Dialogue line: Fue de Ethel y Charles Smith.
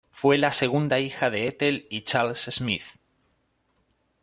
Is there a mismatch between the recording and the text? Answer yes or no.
yes